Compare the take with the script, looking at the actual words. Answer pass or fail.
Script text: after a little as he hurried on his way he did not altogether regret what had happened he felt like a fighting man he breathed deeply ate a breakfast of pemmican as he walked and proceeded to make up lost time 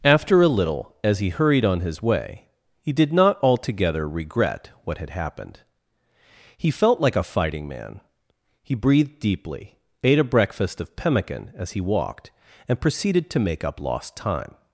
pass